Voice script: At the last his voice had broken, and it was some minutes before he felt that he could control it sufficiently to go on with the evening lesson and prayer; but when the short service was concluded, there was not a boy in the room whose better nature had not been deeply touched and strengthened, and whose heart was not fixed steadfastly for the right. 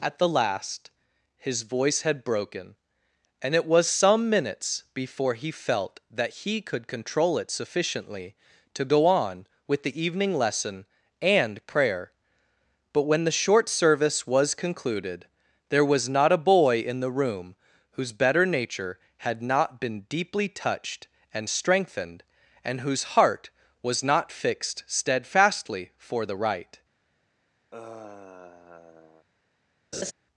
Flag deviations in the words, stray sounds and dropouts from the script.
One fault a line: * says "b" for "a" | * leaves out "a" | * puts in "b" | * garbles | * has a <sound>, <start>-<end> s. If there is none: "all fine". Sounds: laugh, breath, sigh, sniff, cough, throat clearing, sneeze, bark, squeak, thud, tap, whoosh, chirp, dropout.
* has a sigh, 27.7-29.3 s
* has a laugh, 29.9-30.1 s